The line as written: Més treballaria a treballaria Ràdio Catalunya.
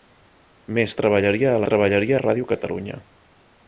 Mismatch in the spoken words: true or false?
false